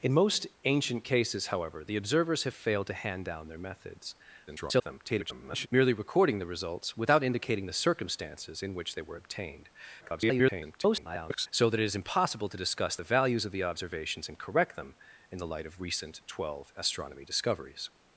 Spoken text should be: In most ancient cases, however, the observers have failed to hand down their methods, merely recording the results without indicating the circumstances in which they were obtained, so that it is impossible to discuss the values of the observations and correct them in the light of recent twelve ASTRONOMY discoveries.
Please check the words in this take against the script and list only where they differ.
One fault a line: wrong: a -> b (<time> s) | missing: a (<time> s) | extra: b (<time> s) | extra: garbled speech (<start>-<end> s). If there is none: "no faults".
extra: garbled speech (4.5-5.7 s)
extra: garbled speech (10.0-11.5 s)